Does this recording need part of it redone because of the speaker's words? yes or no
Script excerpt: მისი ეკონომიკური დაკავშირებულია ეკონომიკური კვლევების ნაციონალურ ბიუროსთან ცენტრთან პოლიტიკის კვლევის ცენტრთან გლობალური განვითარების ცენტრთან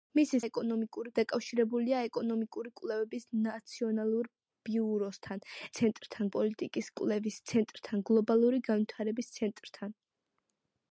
no